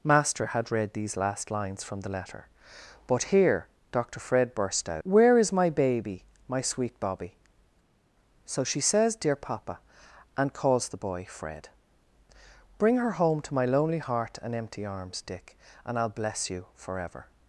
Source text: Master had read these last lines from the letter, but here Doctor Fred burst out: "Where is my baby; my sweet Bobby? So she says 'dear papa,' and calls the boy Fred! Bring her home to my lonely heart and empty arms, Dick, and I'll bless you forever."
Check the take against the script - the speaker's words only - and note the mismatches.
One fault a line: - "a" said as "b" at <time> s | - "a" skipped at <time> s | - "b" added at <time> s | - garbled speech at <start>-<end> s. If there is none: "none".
none